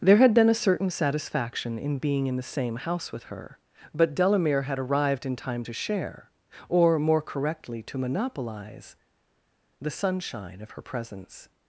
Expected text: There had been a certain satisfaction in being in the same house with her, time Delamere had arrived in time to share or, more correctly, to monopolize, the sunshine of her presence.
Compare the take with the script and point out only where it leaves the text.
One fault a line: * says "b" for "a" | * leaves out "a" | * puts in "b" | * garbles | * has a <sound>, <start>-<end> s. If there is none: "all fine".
* says "but" for "time"